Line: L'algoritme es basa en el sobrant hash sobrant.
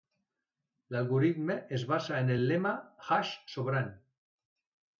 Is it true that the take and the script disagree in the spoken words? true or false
true